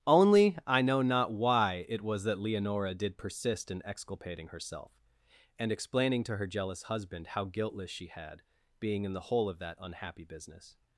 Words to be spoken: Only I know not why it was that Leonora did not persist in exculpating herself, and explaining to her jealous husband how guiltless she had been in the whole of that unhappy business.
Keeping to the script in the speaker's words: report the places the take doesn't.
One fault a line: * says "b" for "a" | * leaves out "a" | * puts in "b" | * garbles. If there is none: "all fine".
* leaves out "not"
* says "being" for "been"